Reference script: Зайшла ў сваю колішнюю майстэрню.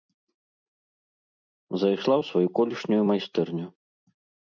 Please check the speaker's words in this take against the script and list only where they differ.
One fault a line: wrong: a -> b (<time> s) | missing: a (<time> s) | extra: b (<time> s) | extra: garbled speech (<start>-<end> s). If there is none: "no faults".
no faults